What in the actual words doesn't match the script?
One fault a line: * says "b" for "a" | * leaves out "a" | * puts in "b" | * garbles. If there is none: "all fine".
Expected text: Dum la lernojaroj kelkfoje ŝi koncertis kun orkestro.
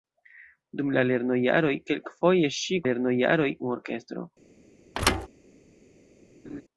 * says "lernojaroj" for "koncertis"